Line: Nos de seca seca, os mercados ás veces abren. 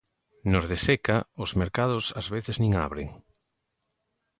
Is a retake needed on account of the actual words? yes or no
yes